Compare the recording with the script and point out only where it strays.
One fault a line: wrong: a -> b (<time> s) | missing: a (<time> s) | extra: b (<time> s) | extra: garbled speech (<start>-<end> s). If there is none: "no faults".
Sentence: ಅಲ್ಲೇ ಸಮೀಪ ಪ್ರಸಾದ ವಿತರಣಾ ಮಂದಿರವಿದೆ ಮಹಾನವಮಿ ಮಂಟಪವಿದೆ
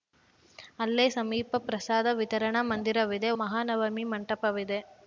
no faults